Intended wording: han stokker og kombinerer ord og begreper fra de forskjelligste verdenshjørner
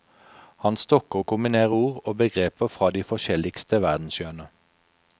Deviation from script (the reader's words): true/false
false